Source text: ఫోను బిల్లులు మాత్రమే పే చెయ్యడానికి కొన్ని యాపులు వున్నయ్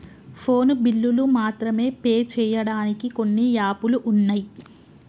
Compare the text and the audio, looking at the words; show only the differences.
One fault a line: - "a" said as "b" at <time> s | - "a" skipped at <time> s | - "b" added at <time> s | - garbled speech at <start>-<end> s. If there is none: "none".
none